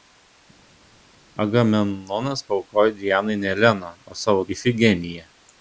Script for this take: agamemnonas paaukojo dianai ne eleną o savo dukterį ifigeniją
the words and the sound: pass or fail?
fail